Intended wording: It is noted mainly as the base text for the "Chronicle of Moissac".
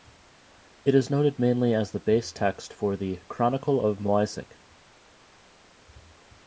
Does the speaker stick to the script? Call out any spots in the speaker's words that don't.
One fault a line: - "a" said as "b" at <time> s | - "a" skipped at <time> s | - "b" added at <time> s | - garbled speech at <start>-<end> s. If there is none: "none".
none